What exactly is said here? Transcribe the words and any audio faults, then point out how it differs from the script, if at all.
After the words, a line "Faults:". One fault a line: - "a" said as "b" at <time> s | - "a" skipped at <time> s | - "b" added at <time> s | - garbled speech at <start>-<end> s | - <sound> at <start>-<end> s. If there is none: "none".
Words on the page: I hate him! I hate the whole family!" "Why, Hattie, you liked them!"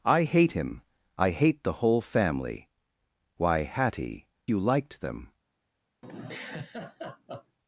I hate him! I hate the whole family!" "Why, Hattie, you liked them!"
Faults:
- laugh at 6.0-7.6 s